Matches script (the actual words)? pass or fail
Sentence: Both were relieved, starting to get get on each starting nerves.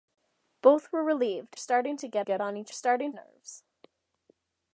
pass